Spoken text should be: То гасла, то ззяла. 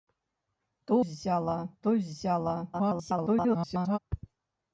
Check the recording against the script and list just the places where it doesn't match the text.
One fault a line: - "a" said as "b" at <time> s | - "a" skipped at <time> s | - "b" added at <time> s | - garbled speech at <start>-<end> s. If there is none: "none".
- "гасла" said as "ззяла" at 1.0 s
- garbled speech at 2.7-4.0 s